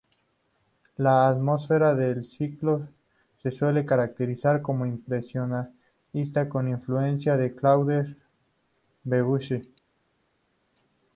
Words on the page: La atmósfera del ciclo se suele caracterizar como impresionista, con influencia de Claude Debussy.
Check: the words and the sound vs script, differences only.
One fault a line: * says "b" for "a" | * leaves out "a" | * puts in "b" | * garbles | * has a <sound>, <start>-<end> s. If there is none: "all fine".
all fine